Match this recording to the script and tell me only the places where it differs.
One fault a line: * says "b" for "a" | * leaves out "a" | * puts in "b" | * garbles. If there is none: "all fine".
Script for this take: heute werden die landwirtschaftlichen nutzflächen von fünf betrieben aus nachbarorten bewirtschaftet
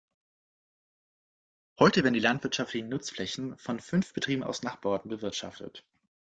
all fine